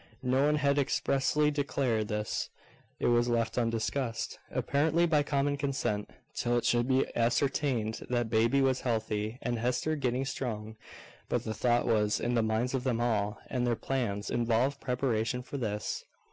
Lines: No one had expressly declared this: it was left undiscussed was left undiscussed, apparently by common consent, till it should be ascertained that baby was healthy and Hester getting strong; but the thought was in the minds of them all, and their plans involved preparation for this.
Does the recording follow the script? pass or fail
fail